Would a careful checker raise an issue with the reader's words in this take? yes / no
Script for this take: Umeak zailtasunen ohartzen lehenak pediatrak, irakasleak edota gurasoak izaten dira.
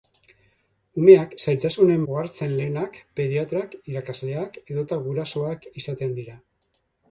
no